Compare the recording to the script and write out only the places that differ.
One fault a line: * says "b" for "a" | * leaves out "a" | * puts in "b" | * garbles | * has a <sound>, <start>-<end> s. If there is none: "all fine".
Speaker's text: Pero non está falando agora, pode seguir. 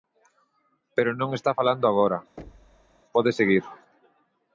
* has a thud, 2.4-3.0 s